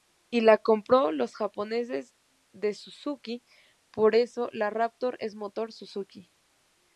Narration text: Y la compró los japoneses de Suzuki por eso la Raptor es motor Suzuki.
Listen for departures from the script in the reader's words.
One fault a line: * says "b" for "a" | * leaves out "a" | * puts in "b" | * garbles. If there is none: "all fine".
all fine